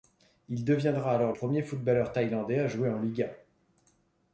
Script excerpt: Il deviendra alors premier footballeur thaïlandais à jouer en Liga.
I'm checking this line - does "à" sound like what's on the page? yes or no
yes